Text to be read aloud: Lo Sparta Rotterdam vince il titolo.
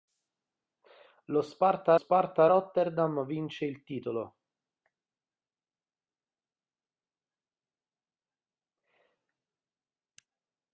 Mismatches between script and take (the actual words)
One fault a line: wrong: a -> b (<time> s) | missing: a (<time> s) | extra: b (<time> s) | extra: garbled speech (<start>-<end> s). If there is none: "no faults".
extra: Sparta (1.9 s)